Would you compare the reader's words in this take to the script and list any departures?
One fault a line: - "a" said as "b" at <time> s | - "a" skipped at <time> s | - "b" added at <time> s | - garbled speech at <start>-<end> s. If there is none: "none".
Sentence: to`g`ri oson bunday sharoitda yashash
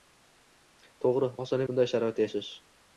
none